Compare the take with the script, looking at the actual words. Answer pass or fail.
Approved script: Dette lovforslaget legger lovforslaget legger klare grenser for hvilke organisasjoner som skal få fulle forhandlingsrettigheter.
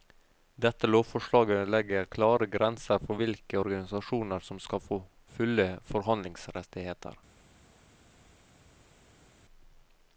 fail